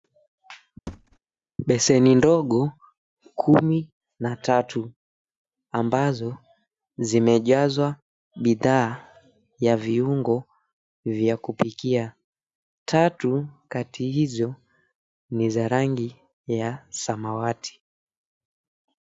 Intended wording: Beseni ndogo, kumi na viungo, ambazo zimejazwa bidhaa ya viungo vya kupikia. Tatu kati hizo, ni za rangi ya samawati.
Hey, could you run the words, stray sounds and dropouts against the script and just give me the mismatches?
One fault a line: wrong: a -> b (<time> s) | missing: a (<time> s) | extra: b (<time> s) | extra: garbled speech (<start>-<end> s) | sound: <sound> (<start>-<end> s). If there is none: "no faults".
sound: thud (0.9-1.2 s)
wrong: viungo -> tatu (4.4 s)